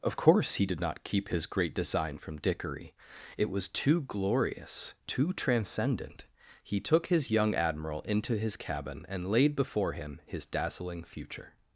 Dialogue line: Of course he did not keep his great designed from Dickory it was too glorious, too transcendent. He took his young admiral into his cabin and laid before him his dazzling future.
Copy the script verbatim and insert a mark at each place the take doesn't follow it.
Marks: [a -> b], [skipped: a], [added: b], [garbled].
Of course he did not keep his great [designed -> design] from Dickory it was too glorious, too transcendent. He took his young admiral into his cabin and laid before him his dazzling future.